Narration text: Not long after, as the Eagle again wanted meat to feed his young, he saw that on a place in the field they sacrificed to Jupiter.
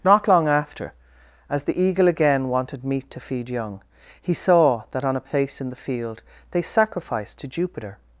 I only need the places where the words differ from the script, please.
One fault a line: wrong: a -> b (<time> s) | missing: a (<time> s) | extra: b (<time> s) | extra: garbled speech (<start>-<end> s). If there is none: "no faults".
missing: his (3.5 s)